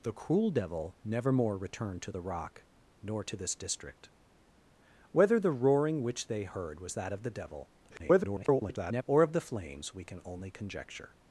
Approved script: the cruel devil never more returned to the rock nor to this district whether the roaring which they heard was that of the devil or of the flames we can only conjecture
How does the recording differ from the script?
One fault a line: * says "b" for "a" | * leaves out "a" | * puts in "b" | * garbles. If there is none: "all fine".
* garbles